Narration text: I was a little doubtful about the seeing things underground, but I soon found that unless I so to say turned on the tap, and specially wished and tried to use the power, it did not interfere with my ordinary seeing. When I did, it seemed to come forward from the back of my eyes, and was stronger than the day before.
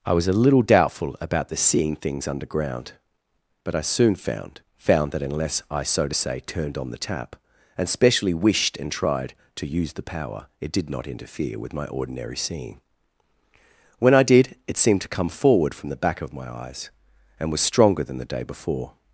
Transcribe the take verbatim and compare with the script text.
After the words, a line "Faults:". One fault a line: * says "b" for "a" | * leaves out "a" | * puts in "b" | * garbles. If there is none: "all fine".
I was a little doubtful about the seeing things underground, but I soon found found that unless I so to say turned on the tap, and specially wished and tried to use the power, it did not interfere with my ordinary seeing. When I did, it seemed to come forward from the back of my eyes, and was stronger than the day before.
Faults:
* puts in "found"